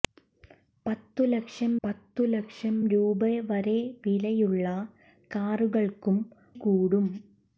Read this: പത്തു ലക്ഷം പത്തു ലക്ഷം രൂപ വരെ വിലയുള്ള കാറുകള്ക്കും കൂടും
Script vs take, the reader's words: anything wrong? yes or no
no